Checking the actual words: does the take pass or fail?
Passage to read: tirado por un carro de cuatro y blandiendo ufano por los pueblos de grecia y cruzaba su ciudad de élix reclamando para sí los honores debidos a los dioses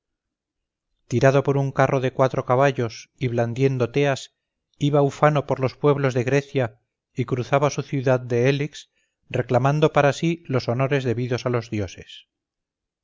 fail